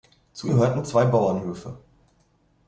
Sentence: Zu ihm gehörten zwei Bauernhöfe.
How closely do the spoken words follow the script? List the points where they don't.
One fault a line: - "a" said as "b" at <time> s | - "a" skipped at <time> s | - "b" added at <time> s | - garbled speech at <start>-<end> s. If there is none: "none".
- "ihm" skipped at 0.5 s